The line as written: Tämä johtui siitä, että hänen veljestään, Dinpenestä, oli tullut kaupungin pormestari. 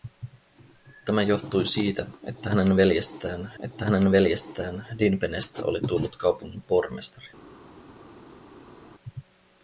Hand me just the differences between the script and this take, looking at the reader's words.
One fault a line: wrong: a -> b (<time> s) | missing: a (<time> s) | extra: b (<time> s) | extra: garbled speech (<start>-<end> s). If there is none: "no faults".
extra: että hänen veljestään (3.6 s)